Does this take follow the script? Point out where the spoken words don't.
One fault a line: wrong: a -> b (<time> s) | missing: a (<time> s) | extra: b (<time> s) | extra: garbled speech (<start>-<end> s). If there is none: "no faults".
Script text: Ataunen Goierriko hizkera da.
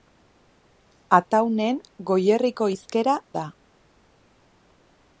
no faults